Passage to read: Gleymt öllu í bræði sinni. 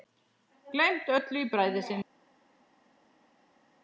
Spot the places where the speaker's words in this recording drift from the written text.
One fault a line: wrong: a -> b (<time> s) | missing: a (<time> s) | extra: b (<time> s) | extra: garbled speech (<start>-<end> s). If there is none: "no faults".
no faults